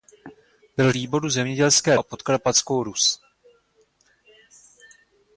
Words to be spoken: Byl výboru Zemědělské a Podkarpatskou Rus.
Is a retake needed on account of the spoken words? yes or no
no